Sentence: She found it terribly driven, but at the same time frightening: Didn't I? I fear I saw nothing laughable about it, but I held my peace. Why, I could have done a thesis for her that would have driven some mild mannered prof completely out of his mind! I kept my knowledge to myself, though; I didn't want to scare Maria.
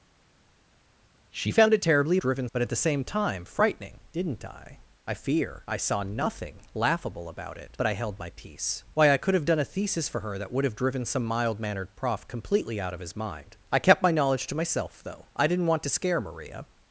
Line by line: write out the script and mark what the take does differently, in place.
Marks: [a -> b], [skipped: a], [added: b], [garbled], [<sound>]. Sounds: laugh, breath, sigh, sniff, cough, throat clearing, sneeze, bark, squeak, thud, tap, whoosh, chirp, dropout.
She found it terribly driven, but at the same time frightening: Didn't I? I fear I saw nothing laughable about it, but I held my peace. Why, I could have done a thesis for her that would have driven some mild mannered prof completely out of his mind! I kept my knowledge to myself, though; I didn't want to scare Maria.